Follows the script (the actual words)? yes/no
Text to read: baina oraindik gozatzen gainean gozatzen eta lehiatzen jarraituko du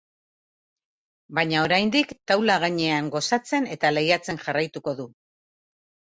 no